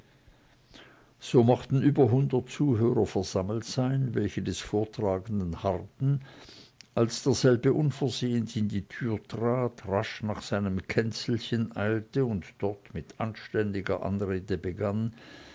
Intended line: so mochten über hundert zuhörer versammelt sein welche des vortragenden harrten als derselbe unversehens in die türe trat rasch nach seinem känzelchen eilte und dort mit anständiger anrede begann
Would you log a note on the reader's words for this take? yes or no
no